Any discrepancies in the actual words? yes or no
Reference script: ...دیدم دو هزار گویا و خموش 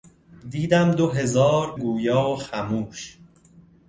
no